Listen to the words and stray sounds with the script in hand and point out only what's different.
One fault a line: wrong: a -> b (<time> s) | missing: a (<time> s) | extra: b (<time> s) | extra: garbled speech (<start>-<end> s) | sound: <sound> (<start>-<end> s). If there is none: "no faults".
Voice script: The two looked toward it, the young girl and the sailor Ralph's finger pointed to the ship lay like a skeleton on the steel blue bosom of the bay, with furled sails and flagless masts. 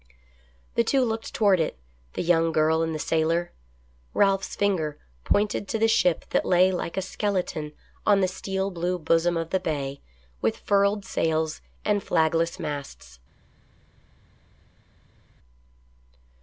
extra: that (6.3 s)